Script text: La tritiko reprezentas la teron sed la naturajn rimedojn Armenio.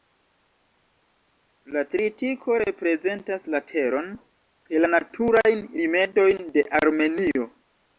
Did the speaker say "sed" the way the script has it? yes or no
no